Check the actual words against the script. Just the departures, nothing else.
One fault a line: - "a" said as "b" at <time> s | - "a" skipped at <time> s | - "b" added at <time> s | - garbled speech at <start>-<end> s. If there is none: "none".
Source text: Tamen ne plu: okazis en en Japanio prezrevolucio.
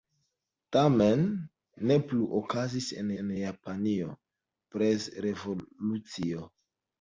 none